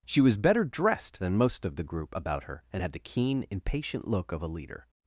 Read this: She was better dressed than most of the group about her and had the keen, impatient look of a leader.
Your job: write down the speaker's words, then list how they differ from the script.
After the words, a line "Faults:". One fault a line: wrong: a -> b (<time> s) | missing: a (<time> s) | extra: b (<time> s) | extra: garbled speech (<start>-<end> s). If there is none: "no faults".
She was better dressed than most of the group about her and had the keen, impatient look of a leader.
Faults:
no faults